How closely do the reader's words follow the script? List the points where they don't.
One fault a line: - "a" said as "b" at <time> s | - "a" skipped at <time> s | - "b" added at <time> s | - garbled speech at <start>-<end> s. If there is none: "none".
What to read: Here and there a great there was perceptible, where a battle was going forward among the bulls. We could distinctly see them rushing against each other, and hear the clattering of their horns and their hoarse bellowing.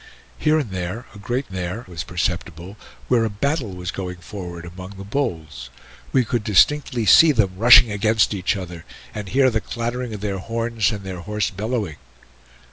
none